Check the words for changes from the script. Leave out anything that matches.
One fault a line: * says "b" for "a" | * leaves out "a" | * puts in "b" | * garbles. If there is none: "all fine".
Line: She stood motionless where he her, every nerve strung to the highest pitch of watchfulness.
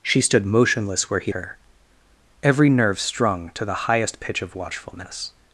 all fine